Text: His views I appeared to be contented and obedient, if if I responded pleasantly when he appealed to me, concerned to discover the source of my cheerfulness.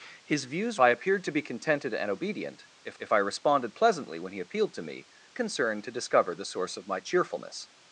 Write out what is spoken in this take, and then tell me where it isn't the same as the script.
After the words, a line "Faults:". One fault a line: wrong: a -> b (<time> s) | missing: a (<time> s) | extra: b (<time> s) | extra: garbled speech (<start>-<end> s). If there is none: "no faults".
His views I appeared to be contented and obedient, if if I responded pleasantly when he appealed to me, concerned to discover the source of my cheerfulness.
Faults:
no faults